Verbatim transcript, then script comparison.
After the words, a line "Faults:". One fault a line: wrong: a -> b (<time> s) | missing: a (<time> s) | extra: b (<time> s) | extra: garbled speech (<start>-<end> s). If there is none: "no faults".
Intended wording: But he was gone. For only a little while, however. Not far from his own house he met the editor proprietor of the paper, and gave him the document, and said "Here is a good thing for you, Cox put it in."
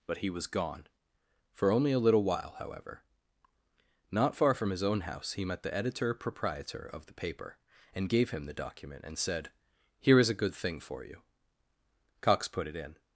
But he was gone. For only a little while, however. Not far from his own house he met the editor proprietor of the paper, and gave him the document, and said "Here is a good thing for you, Cox put it in."
Faults:
no faults